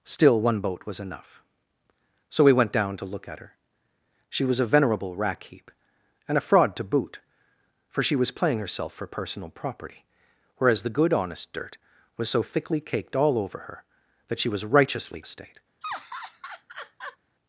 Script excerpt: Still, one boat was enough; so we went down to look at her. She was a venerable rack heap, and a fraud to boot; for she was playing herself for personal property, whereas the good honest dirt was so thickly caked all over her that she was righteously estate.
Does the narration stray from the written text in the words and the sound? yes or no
yes